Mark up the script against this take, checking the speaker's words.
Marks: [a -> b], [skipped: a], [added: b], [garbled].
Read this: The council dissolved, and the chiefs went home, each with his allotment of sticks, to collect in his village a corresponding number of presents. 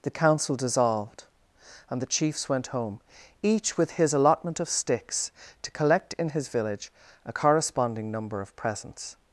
The council dissolved, and the chiefs went home, each with his allotment of sticks, to collect in his village a corresponding number of presents.